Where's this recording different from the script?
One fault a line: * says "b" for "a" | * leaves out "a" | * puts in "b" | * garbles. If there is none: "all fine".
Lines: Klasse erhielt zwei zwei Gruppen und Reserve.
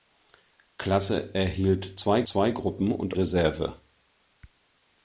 all fine